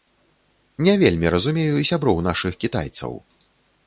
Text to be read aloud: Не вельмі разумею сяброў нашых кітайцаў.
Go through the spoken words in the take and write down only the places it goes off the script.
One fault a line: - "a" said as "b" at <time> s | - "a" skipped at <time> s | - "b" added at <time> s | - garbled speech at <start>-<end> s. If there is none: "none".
none